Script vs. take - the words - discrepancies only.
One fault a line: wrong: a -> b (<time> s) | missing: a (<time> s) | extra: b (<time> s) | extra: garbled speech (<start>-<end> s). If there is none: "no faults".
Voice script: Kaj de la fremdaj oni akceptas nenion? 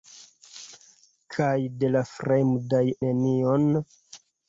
missing: oni akceptas (2.8 s)